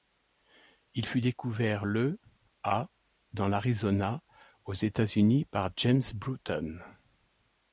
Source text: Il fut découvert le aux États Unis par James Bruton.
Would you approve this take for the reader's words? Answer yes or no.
no